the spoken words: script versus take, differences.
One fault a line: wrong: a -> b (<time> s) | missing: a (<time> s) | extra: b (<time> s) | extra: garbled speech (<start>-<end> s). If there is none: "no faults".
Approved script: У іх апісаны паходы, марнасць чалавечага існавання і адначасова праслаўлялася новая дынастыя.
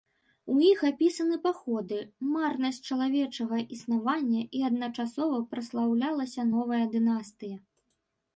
no faults